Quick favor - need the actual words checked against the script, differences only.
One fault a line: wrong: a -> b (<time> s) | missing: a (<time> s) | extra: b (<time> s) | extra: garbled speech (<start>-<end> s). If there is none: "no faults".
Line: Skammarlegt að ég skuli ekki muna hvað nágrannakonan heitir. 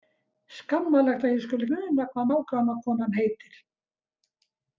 missing: ekki (1.7 s)